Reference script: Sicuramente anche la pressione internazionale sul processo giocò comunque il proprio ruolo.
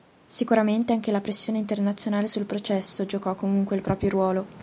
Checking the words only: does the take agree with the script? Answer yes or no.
yes